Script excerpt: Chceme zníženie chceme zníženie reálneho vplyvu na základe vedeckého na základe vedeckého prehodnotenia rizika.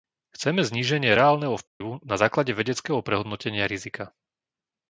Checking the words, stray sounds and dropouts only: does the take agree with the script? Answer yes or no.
no